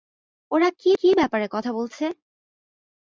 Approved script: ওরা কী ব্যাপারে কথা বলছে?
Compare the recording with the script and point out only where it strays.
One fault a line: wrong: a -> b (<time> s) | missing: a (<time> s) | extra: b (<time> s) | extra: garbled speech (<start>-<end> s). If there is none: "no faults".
extra: কী (1.0 s)